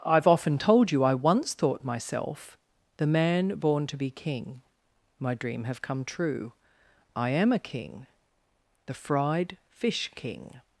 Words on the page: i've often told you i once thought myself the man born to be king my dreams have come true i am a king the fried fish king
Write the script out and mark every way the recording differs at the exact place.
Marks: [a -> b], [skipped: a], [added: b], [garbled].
i've often told you i once thought myself the man born to be king my [dreams -> dream] have come true i am a king the fried fish king